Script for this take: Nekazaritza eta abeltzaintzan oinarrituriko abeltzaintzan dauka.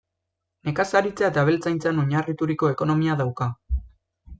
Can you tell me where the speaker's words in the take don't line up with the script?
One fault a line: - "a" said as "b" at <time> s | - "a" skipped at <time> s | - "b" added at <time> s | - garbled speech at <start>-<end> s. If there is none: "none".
- "abeltzaintzan" said as "ekonomia" at 2.8 s